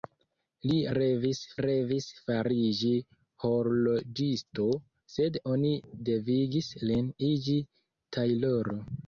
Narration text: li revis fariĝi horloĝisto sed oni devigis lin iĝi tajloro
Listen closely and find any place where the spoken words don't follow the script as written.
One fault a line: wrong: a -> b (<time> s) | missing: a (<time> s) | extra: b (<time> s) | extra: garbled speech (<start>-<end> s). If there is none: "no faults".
extra: revis (1.6 s)